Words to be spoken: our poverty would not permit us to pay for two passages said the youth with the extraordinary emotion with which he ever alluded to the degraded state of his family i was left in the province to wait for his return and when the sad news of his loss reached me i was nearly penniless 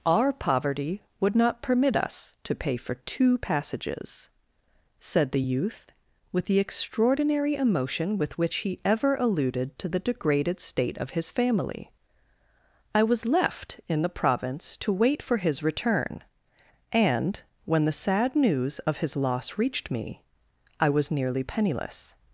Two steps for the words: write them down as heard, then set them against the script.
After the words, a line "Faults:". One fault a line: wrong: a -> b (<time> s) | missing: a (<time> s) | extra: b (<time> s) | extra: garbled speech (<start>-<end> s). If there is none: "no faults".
our poverty would not permit us to pay for two passages said the youth with the extraordinary emotion with which he ever alluded to the degraded state of his family i was left in the province to wait for his return and when the sad news of his loss reached me i was nearly penniless
Faults:
no faults